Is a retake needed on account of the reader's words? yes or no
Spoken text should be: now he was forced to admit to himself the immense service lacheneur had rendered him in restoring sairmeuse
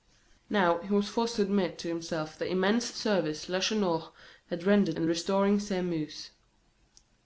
yes